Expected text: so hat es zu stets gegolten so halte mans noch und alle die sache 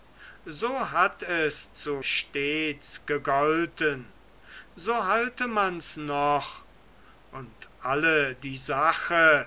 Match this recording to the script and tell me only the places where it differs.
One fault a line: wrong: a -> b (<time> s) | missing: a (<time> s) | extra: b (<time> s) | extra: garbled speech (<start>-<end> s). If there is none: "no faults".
no faults